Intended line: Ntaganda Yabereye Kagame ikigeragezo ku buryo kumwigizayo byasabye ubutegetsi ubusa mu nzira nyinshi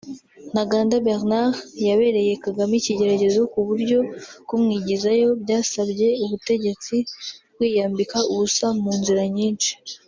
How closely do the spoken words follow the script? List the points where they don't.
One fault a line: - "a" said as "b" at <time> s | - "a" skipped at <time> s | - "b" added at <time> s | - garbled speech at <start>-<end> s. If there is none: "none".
- "Bernard" added at 1.1 s
- "kwiyambika" added at 7.5 s